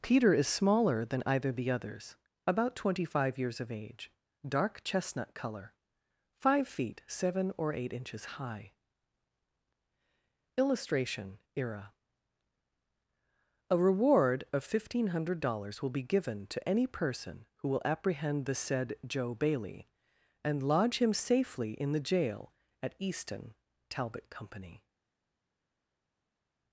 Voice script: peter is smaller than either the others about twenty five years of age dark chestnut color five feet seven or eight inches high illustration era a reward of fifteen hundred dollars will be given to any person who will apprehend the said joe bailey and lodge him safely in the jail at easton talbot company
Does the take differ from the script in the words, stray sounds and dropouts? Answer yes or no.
no